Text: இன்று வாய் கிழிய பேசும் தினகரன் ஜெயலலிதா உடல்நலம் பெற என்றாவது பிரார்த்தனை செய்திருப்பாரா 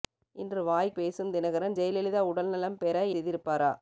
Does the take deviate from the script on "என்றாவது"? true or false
true